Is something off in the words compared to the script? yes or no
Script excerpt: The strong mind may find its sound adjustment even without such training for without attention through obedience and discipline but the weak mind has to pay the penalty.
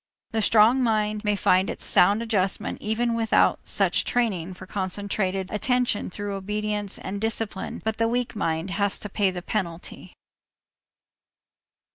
yes